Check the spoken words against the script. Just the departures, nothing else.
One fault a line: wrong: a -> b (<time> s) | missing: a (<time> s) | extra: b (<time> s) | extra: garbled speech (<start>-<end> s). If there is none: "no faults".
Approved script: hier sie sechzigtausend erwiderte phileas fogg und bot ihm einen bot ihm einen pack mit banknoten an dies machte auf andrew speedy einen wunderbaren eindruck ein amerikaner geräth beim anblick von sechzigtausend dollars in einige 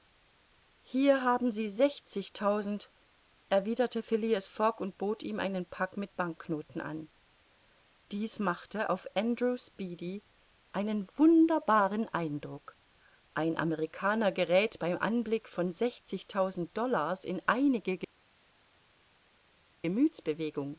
extra: haben (1.2 s)
missing: bot ihm einen (5.7 s)